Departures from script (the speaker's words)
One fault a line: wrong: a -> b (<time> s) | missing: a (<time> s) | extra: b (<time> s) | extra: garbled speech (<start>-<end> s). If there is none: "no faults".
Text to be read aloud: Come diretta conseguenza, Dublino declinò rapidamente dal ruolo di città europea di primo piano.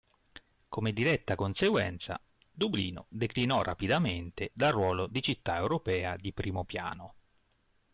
no faults